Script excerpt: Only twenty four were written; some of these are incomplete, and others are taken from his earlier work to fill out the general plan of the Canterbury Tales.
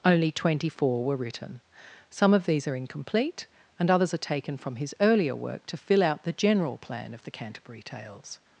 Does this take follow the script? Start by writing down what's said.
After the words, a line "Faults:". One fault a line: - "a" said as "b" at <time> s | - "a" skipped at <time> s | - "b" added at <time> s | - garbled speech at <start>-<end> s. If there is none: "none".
Only twenty four were written; some of these are incomplete, and others are taken from his earlier work to fill out the general plan of the Canterbury Tales.
Faults:
none